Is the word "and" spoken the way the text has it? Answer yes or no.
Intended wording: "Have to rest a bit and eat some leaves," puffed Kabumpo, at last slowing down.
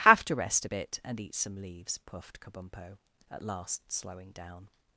yes